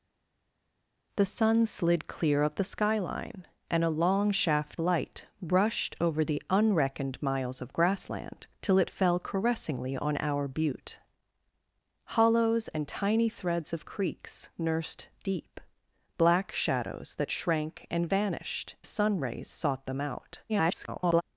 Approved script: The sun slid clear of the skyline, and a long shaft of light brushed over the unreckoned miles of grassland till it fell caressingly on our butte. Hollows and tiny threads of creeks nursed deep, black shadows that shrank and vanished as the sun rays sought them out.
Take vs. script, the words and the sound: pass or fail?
fail